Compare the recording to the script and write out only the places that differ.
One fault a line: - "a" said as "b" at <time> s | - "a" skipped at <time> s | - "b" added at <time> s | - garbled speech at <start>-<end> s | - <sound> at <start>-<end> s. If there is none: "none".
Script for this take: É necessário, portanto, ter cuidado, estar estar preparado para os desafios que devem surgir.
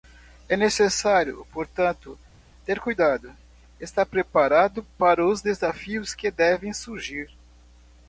- "estar" skipped at 4.1 s